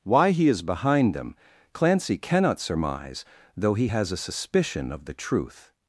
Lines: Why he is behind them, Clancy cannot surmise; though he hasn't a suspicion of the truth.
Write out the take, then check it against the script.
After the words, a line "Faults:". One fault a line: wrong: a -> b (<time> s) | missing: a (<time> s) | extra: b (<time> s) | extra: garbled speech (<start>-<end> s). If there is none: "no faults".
Why he is behind them, Clancy cannot surmise; though he has a suspicion of the truth.
Faults:
wrong: hasn't -> has (3.9 s)